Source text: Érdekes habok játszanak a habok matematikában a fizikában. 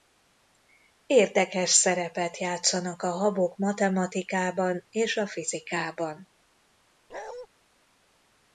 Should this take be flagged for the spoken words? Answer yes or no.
yes